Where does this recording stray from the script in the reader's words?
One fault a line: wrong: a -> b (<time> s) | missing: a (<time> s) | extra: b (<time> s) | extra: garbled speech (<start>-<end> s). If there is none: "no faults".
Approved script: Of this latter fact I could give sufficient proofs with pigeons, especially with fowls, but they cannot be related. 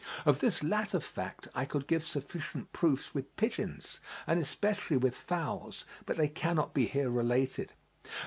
extra: and (4.2 s)
extra: here (6.9 s)